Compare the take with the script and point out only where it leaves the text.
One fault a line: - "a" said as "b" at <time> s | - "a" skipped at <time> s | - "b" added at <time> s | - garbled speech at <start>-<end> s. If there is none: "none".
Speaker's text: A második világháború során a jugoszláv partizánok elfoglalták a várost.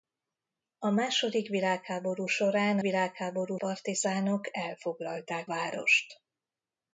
- "jugoszláv" said as "világháború" at 2.8 s
- "a" skipped at 5.5 s